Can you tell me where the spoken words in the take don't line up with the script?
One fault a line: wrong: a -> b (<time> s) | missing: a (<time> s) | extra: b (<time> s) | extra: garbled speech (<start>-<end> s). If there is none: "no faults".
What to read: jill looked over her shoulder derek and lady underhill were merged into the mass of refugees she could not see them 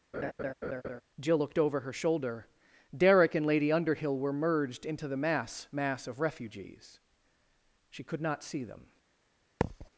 extra: mass (5.7 s)